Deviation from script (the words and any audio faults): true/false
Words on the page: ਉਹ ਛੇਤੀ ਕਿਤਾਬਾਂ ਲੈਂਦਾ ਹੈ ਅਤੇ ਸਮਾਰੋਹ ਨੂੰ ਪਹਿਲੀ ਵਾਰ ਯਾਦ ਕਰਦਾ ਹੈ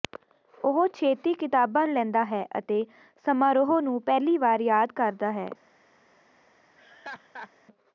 true